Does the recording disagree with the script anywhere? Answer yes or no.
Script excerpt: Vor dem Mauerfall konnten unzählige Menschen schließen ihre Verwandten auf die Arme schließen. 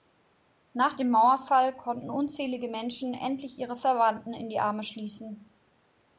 yes